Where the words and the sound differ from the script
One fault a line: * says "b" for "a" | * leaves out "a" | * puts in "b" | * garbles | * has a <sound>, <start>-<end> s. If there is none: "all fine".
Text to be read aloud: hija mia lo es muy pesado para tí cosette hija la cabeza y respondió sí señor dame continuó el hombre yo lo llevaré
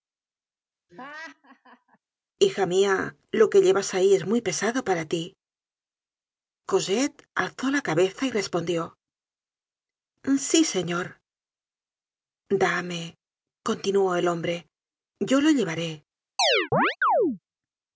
* has a laugh, 0.9-2.0 s
* puts in "que llevas ahí"
* says "alzó" for "hija"
* has a chirp, 16.4-17.4 s